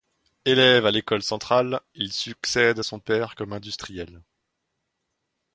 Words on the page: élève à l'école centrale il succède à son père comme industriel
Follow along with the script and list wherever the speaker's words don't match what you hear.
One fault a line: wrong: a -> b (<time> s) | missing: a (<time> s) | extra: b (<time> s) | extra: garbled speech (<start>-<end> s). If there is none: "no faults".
no faults